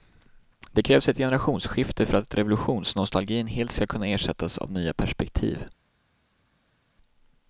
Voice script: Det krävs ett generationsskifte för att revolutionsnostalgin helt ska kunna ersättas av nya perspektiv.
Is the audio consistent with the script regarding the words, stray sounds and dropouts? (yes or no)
yes